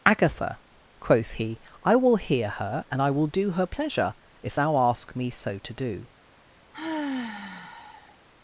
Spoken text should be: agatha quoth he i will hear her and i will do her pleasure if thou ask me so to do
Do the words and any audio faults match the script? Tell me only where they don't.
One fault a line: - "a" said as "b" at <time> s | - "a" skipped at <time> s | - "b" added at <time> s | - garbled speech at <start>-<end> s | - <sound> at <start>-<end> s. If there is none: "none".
- sigh at 6.7-8.2 s